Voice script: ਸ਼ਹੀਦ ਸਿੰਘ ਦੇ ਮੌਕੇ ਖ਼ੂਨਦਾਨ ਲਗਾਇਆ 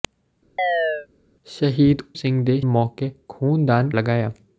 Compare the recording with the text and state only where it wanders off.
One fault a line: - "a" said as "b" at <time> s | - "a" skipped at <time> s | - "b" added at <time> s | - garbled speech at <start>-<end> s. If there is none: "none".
none